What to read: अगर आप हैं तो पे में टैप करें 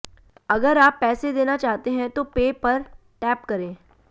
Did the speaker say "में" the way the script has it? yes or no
no